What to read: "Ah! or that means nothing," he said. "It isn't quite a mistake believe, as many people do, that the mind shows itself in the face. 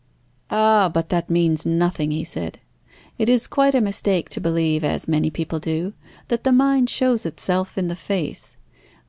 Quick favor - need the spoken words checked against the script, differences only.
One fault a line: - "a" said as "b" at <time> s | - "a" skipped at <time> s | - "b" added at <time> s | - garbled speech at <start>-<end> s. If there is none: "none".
- "or" said as "but" at 0.9 s
- "isn't" said as "is" at 3.3 s
- "to" added at 4.3 s